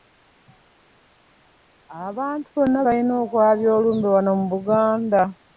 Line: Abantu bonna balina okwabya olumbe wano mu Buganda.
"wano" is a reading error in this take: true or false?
false